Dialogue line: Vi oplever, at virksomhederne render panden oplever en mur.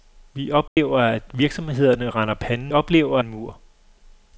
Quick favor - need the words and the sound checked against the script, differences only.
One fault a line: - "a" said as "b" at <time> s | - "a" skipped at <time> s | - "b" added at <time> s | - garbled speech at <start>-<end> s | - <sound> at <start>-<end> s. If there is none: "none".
- dropout at 0.7-0.8 s